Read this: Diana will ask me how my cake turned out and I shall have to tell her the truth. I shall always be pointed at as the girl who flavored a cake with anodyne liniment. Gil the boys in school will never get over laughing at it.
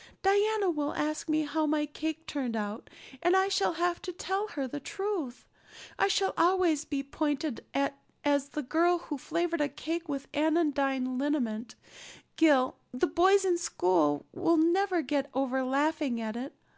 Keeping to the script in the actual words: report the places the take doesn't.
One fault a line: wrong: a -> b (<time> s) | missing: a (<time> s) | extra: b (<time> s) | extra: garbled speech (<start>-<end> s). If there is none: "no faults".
no faults